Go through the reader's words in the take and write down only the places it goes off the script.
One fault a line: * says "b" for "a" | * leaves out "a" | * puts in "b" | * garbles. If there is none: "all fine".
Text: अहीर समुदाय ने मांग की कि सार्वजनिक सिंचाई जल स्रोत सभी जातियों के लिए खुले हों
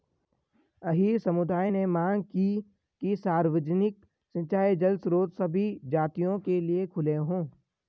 all fine